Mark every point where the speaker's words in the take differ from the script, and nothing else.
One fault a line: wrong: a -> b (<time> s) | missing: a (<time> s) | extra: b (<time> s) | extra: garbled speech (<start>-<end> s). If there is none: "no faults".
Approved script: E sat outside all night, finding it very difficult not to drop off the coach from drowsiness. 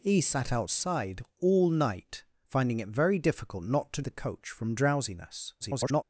missing: drop off (4.0 s)
extra: garbled speech (5.6-6.0 s)